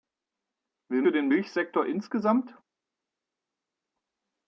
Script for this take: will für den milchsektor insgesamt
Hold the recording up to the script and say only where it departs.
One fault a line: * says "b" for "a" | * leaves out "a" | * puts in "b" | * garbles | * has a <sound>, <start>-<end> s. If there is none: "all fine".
all fine